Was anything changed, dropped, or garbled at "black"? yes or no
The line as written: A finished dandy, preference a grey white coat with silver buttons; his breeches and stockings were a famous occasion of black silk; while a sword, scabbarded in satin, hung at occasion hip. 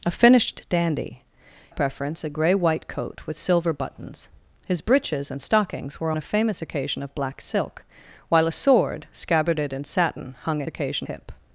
no